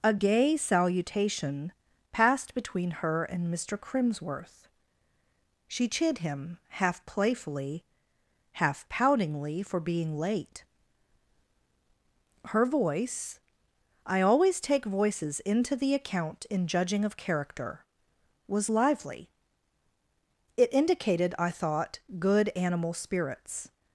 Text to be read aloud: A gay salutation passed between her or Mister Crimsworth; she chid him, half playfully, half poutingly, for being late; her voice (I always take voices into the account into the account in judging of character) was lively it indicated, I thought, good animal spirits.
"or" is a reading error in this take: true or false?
true